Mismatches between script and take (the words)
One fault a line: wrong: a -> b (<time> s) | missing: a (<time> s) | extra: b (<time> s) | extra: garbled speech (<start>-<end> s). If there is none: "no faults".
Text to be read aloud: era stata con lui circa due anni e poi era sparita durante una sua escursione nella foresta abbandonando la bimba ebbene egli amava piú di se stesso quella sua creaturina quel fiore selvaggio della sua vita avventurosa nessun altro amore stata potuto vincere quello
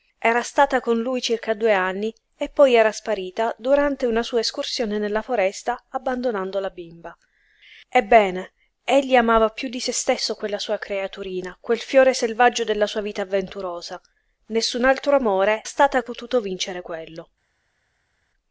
no faults